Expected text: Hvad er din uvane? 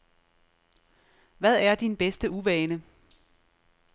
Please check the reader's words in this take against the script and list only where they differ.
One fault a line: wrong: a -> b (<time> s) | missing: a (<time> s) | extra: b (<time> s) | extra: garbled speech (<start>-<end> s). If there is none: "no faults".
extra: bedste (2.0 s)